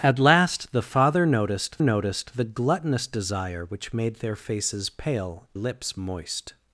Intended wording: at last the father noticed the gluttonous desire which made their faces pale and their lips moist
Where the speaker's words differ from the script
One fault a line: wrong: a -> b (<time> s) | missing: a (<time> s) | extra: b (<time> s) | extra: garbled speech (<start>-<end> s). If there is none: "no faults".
extra: noticed (1.8 s)
missing: and their (5.5 s)